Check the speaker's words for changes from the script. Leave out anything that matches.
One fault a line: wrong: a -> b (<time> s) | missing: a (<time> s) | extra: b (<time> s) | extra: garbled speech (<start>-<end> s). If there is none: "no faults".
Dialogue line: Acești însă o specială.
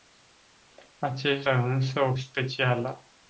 no faults